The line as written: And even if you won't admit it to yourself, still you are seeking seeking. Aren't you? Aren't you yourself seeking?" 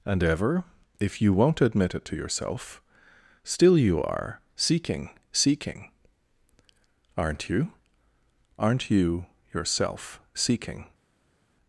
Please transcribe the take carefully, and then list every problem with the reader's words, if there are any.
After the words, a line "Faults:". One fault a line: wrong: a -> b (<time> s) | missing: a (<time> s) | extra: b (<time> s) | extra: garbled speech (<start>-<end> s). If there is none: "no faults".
And ever if you won't admit it to yourself, still you are seeking seeking. Aren't you? Aren't you yourself seeking?"
Faults:
wrong: even -> ever (0.2 s)